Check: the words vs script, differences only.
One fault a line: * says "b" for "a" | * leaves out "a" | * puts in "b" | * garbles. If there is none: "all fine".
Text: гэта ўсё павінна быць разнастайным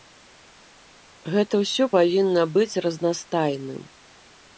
all fine